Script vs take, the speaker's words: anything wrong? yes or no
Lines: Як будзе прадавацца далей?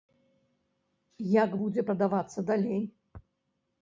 no